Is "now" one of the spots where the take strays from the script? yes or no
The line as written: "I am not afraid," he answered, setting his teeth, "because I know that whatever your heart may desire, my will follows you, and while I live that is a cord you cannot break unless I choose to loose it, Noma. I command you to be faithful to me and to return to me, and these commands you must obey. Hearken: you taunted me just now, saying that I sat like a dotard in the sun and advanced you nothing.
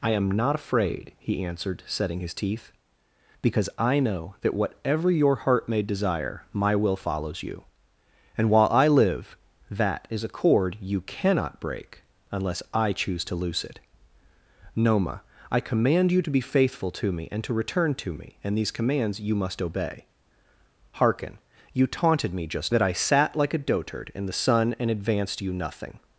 yes